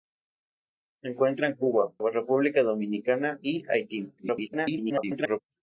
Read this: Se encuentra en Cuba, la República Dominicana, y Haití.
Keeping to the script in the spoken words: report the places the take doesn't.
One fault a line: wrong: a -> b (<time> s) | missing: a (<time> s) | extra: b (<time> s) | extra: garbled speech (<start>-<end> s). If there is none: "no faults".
missing: la (1.9 s)
extra: garbled speech (4.2-5.4 s)